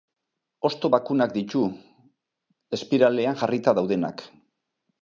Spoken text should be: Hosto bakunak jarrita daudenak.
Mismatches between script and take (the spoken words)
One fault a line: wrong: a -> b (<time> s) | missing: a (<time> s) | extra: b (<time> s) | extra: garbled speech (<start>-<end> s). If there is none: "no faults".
extra: ditu espiralean (1.3 s)